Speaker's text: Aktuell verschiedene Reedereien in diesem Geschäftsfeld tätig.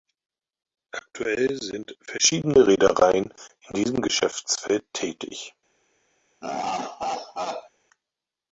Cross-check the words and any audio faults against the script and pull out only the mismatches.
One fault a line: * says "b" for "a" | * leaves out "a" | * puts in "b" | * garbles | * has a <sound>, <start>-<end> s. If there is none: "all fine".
* puts in "sind"
* has a laugh, 6.4-7.7 s